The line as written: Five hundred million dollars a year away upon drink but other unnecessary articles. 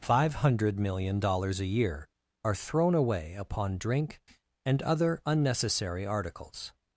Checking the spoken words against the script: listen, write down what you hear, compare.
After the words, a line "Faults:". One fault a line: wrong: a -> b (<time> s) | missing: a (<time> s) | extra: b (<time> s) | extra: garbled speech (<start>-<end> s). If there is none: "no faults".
Five hundred million dollars a year are thrown away upon drink and other unnecessary articles.
Faults:
extra: are thrown (2.4 s)
wrong: but -> and (4.6 s)